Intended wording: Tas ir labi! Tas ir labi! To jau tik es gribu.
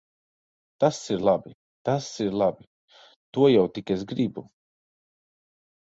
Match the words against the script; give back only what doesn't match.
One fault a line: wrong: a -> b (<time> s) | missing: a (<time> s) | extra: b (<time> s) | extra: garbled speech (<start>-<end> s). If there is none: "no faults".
no faults